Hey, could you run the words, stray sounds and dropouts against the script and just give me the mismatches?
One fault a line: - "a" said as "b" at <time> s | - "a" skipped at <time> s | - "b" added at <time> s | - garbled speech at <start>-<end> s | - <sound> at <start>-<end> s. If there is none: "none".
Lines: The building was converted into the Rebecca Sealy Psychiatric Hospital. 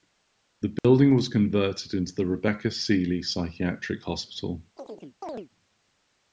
- dropout at 0.8-0.8 s
- chirp at 4.8-5.5 s